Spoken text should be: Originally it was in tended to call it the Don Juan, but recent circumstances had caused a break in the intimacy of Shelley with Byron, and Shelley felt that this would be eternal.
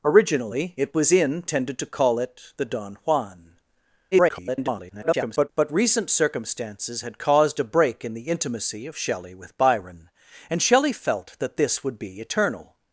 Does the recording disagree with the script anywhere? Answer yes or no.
yes